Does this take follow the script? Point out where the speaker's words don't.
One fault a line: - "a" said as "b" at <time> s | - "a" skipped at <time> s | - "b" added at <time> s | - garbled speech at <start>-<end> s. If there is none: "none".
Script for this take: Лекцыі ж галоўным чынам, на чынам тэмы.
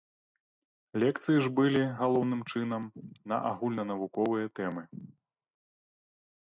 - "былі" added at 1.6 s
- "чынам" said as "агульнанавуковыя" at 3.5 s